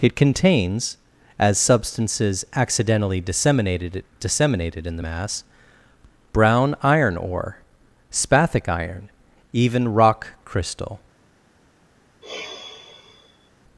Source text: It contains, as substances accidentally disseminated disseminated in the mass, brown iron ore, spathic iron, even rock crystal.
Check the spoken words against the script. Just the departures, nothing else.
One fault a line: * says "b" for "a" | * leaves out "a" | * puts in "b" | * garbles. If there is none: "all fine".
all fine